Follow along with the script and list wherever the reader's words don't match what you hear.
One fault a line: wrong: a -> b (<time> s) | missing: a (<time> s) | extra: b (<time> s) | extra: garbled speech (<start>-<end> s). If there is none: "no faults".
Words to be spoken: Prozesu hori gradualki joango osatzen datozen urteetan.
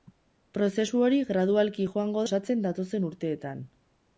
no faults